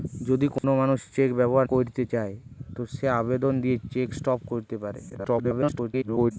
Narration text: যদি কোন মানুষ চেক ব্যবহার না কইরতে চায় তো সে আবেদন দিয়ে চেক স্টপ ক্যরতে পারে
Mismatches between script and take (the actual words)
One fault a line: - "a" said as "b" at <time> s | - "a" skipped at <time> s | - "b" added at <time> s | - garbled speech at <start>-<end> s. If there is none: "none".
- "না" skipped at 1.7 s
- garbled speech at 5.1-6.3 s